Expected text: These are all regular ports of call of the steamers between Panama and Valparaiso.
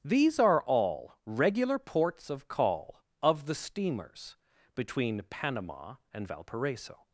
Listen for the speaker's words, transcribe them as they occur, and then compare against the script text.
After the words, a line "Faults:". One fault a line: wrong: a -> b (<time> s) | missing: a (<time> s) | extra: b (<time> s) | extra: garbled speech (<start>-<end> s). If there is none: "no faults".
These are all regular ports of call of the steamers between Panama and Valparaiso.
Faults:
no faults